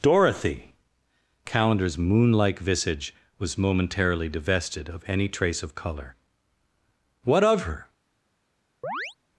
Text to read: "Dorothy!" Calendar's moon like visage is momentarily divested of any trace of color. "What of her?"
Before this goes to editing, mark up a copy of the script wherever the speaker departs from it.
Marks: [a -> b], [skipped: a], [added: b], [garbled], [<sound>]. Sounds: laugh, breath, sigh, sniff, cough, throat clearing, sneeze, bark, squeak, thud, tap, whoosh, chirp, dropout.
"Dorothy!" Calendar's moon like visage [is -> was] momentarily divested of any trace of color. "What of her?" [chirp]